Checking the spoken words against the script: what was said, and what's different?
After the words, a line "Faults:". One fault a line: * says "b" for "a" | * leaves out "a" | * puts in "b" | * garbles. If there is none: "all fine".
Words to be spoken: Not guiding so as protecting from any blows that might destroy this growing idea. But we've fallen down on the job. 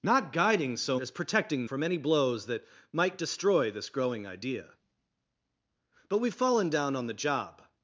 Not guiding so as protecting from any blows that might destroy this growing idea. But we've fallen down on the job.
Faults:
all fine